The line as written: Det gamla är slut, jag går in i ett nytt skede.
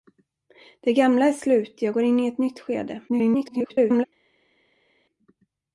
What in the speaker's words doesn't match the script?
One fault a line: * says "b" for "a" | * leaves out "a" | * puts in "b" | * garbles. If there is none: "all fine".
* garbles